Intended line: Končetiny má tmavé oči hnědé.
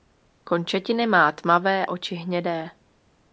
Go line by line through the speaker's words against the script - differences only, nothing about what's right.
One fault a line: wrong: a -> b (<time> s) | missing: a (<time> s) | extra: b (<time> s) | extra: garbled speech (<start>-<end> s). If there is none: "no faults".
no faults